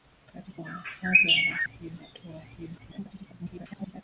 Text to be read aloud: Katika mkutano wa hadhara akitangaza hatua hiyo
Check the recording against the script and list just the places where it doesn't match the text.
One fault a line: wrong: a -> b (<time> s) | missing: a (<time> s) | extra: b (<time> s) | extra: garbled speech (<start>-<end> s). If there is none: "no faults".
missing: mkutano (0.6 s)
wrong: akitangaza -> hiyo (1.6 s)
extra: garbled speech (2.8-4.0 s)